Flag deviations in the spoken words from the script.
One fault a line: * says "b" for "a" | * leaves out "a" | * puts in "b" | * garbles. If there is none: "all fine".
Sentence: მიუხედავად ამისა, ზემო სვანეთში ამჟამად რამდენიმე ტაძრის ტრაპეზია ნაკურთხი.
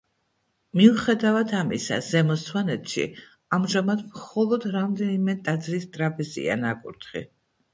* puts in "მხოლოდ"